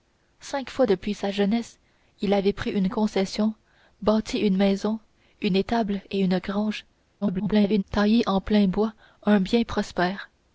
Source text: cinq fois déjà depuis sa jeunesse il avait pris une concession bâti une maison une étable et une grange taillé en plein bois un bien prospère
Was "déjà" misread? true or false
true